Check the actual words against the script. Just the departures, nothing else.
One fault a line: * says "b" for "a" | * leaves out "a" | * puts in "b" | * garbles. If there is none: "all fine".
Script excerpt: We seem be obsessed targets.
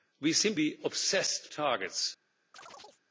all fine